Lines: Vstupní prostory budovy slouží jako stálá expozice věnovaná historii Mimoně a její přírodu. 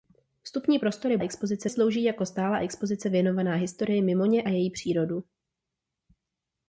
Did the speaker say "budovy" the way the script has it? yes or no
no